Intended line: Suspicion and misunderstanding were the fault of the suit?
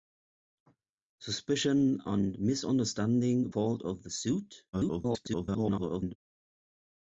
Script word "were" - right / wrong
wrong